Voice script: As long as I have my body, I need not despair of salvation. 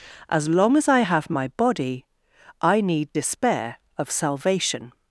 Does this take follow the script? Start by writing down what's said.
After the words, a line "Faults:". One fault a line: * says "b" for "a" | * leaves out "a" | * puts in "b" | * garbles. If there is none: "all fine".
As long as I have my body, I need despair of salvation.
Faults:
* leaves out "not"